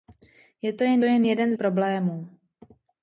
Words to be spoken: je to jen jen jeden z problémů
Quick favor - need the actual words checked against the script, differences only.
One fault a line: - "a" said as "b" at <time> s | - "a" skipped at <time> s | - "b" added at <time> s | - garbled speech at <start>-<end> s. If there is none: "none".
none